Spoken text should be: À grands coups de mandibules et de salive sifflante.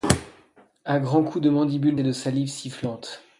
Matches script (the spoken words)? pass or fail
pass